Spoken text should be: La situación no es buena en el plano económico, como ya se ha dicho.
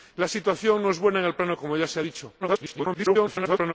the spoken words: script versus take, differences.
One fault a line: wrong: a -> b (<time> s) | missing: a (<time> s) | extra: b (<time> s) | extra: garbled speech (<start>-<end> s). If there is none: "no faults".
missing: económico (1.5 s)
extra: garbled speech (2.4-3.7 s)